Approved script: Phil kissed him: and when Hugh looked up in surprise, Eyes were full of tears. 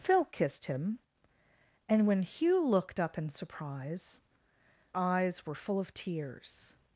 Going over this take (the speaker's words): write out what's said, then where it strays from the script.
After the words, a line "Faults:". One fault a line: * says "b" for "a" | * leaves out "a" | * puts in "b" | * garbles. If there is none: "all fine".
Phil kissed him: and when Hugh looked up in surprise, Eyes were full of tears.
Faults:
all fine